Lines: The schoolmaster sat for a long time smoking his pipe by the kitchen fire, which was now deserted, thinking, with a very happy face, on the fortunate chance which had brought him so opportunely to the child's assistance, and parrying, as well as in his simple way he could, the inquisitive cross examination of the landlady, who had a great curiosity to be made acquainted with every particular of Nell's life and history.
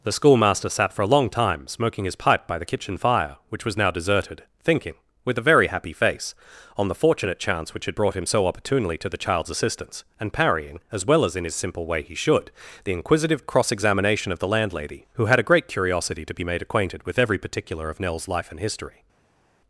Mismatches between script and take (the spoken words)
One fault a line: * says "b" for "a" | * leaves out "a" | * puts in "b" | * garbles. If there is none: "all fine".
* says "should" for "could"